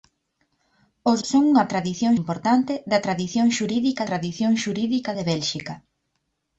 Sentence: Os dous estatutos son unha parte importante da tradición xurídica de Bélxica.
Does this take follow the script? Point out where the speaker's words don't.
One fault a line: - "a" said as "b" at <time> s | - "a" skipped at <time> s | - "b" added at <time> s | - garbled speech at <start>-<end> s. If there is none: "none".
- "dous estatutos" skipped at 1.2 s
- "parte" said as "tradición" at 1.7 s
- "tradición xurídica" added at 4.1 s